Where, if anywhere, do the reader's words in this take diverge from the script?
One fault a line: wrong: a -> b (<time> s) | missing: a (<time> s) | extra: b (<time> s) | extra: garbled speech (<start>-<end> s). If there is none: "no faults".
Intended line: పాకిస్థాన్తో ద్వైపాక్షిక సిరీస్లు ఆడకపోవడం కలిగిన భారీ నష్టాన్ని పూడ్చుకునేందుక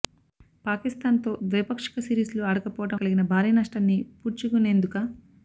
no faults